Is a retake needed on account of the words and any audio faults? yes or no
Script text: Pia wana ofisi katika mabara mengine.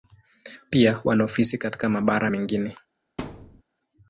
yes